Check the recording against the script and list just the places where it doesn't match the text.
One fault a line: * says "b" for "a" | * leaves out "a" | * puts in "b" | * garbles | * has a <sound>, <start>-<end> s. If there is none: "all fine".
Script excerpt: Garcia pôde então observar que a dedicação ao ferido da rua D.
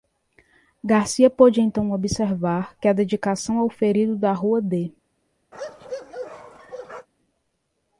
* has a bark, 5.5-7.1 s